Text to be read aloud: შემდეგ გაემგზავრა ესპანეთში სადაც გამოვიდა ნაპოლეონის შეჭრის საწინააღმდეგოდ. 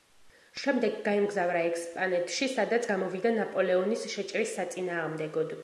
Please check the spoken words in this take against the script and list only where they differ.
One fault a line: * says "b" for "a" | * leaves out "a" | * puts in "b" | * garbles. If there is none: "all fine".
all fine